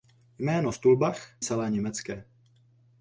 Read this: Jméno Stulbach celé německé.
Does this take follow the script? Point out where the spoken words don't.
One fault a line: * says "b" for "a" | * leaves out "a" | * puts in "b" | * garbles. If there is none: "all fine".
all fine